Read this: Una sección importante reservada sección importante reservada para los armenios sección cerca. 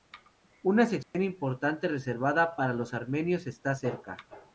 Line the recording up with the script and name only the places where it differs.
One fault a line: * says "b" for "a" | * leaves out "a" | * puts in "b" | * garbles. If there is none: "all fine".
* leaves out "sección importante reservada"
* says "está" for "sección"